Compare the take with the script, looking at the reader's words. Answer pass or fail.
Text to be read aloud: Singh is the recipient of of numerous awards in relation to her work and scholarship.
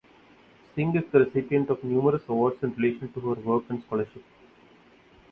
fail